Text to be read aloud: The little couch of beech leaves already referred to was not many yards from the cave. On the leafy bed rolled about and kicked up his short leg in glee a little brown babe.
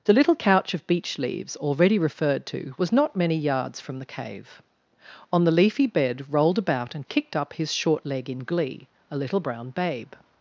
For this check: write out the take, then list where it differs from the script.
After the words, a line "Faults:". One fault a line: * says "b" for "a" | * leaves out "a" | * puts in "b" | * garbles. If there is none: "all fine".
The little couch of beech leaves already referred to was not many yards from the cave. On the leafy bed rolled about and kicked up his short leg in glee a little brown babe.
Faults:
all fine